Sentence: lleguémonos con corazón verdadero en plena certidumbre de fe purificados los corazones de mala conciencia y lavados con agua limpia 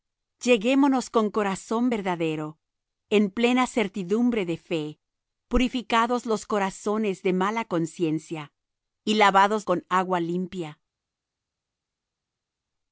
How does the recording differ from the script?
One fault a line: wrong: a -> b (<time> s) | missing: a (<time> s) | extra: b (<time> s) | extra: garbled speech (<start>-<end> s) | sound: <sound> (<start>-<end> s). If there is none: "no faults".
no faults